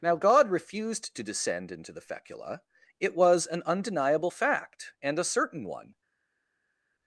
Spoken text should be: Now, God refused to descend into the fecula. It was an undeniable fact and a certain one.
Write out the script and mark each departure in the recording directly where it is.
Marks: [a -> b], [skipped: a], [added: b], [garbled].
Now, God refused to descend into the fecula. It was an undeniable fact and a certain one.